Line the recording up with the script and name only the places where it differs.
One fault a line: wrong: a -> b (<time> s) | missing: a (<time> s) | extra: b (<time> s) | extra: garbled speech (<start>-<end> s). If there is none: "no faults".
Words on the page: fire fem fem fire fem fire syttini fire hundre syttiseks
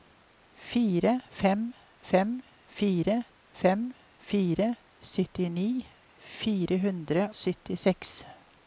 no faults